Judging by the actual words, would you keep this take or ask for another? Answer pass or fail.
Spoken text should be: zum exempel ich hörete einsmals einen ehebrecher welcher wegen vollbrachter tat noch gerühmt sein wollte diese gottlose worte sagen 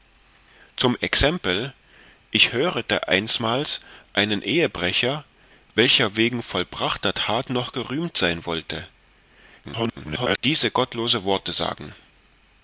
fail